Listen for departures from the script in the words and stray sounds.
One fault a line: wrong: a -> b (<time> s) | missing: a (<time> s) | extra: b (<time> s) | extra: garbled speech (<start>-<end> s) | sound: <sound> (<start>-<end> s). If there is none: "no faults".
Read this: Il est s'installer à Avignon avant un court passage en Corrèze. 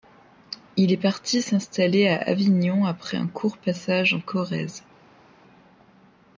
extra: parti (1.0 s)
wrong: avant -> après (2.8 s)